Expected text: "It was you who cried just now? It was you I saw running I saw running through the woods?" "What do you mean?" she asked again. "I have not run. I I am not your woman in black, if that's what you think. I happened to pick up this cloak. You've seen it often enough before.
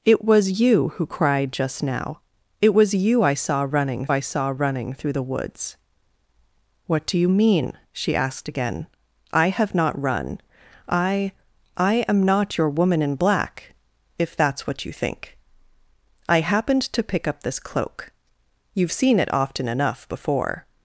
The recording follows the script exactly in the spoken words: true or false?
true